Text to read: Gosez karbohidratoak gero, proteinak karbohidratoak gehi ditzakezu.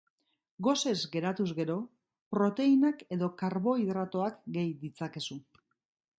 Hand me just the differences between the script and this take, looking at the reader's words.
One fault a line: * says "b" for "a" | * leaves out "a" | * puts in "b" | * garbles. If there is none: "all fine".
* says "geratuz" for "karbohidratoak"
* puts in "edo"